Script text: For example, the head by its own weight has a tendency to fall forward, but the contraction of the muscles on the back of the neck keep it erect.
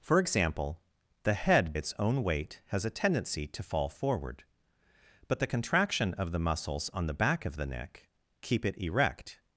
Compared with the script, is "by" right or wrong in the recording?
wrong